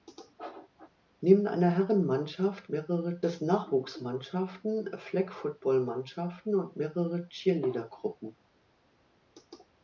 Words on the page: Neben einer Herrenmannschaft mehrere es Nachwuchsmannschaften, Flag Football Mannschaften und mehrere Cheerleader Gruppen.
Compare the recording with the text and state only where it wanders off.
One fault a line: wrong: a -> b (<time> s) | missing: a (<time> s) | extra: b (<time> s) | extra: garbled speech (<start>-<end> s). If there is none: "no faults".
no faults